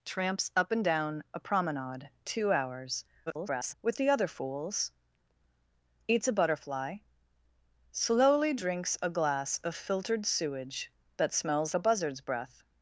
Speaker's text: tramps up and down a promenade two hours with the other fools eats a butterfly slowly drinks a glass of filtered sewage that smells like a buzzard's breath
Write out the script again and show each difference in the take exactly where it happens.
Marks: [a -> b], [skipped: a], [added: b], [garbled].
tramps up and down a promenade two hours [garbled] with the other fools eats a butterfly slowly drinks a glass of filtered sewage that smells [skipped: like] a buzzard's breath